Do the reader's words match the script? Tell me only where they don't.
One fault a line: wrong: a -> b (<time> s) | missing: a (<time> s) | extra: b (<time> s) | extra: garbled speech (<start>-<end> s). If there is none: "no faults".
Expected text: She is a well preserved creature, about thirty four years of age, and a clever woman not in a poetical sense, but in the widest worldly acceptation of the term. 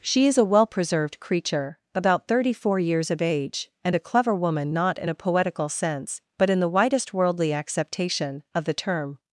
no faults